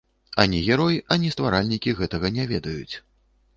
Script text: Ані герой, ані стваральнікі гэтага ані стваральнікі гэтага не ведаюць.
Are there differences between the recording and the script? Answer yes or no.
yes